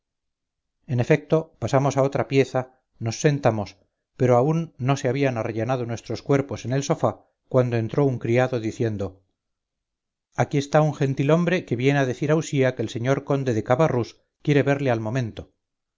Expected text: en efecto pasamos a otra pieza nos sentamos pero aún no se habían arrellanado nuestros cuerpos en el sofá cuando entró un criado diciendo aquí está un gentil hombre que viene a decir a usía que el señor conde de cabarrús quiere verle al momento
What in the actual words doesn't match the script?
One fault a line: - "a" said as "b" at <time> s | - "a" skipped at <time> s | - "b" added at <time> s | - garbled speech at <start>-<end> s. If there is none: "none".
none